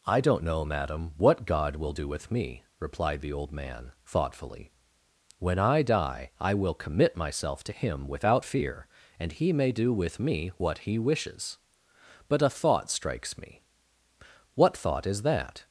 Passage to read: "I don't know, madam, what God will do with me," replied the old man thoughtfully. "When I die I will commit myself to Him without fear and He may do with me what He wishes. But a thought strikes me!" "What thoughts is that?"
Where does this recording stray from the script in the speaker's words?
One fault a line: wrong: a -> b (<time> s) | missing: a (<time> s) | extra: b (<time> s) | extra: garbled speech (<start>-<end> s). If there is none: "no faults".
wrong: thoughts -> thought (14.8 s)